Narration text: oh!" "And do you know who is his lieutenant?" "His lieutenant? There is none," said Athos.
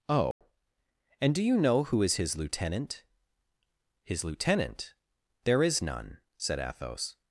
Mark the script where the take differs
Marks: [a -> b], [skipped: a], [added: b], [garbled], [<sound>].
oh!" [dropout] "And do you know who is his lieutenant?" "His lieutenant? There is none," said Athos.